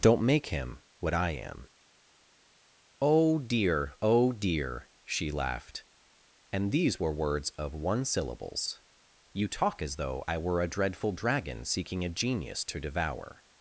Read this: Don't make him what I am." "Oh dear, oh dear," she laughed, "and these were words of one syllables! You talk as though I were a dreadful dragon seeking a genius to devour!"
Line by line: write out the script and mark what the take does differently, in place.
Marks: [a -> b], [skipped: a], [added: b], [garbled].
Don't make him what I am." "Oh dear, oh dear," she laughed, "and these were words of one syllables! You talk as though I were a dreadful dragon seeking a genius to devour!"